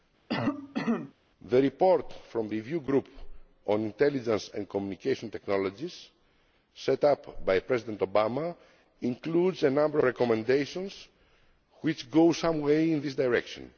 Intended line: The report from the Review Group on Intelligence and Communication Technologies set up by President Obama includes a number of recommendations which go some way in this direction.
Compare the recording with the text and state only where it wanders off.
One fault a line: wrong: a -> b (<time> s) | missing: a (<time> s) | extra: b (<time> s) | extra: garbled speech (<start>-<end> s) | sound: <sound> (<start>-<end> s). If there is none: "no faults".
sound: cough (0.3-1.1 s)
missing: the (2.5 s)
missing: of (10.0 s)